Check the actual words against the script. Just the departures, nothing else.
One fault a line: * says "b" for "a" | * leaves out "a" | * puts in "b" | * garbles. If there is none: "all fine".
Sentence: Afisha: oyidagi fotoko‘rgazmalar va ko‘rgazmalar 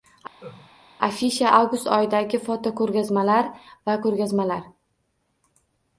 * puts in "avgust"